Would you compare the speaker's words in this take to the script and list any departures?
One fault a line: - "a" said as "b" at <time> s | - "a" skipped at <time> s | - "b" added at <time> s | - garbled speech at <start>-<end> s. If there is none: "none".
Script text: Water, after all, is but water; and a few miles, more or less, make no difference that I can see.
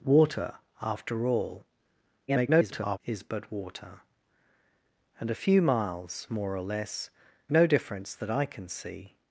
- garbled speech at 2.3-3.0 s
- "make" skipped at 7.1 s